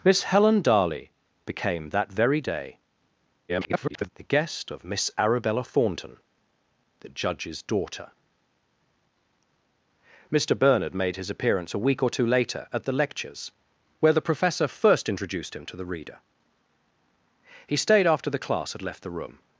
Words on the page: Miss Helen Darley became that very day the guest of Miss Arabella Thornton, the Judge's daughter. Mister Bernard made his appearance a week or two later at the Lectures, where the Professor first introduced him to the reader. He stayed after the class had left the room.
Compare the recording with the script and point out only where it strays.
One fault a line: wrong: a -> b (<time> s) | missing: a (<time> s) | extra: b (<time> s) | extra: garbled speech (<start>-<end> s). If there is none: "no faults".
extra: garbled speech (3.5-4.1 s)